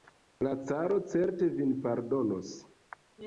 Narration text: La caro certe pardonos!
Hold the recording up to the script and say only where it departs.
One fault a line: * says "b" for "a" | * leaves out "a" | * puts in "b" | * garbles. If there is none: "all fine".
* puts in "vin"